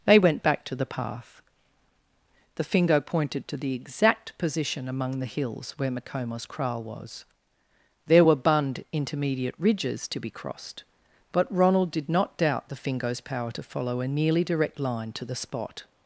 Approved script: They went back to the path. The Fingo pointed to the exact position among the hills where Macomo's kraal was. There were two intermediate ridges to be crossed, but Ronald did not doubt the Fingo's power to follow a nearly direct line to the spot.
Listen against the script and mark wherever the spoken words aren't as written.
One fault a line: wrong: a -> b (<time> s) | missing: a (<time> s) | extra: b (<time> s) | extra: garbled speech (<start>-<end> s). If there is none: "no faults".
wrong: two -> bund (8.4 s)